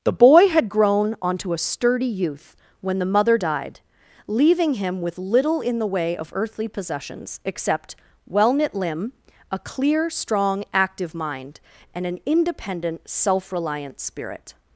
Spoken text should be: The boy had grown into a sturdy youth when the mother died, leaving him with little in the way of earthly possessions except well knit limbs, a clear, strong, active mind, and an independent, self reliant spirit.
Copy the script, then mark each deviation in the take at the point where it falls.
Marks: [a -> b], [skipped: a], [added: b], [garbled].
The boy had grown [into -> onto] a sturdy youth when the mother died, leaving him with little in the way of earthly possessions except well knit [limbs, -> limb] a clear, strong, active mind, and an independent, self reliant spirit.